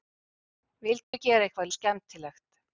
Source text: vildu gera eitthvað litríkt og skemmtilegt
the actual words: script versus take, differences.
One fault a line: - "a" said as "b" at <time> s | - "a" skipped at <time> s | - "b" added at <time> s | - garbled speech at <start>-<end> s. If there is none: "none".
- "litríkt" skipped at 1.7 s